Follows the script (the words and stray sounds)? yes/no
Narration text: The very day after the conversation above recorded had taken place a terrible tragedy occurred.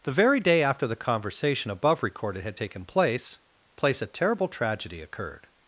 no